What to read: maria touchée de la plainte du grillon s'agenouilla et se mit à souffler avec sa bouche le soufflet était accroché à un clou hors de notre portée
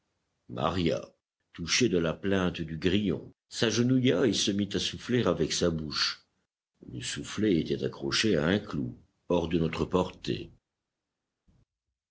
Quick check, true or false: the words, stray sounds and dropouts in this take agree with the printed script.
true